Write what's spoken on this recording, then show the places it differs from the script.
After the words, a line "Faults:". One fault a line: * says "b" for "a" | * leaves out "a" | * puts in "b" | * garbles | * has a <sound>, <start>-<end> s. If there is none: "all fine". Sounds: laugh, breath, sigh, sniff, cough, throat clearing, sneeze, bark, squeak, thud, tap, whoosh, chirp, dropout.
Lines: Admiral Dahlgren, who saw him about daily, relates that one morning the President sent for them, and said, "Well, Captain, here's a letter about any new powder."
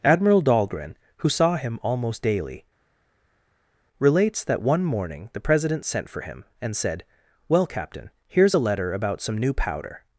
Admiral Dahlgren, who saw him almost daily, relates that one morning the President sent for him, and said, "Well, Captain, here's a letter about some new powder."
Faults:
* says "almost" for "about"
* says "him" for "them"
* says "some" for "any"